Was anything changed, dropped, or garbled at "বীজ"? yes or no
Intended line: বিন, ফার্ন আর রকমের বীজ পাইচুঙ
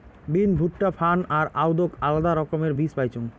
no